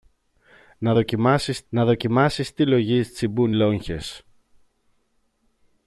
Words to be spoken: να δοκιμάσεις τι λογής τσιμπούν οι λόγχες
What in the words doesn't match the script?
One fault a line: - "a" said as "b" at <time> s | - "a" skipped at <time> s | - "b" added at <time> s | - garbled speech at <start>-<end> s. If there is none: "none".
- "να δοκιμάσεις" added at 1.7 s
- "οι" skipped at 3.5 s